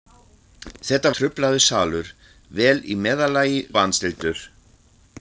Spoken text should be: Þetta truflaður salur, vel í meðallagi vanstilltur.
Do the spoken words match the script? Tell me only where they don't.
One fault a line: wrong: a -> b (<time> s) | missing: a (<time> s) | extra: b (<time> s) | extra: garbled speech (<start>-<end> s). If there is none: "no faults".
no faults